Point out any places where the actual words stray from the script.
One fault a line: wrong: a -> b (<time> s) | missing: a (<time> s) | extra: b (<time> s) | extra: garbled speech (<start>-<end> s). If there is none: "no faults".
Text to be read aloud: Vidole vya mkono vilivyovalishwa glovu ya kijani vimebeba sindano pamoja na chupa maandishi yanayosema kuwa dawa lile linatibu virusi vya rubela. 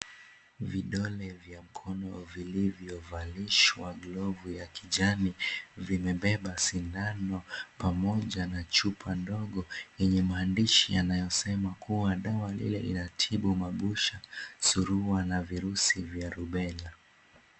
extra: ndogo yenye (9.1 s)
extra: mabusha surua na (13.6 s)